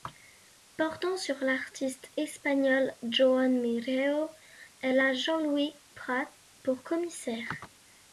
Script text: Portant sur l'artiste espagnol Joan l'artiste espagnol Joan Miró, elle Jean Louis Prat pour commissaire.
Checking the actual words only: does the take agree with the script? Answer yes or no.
no